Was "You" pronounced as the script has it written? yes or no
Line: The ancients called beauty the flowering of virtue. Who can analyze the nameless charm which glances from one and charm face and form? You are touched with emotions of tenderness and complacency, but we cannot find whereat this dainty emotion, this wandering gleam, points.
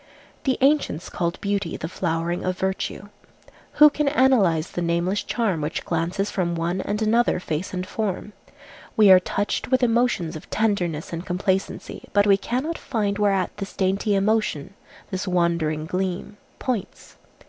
no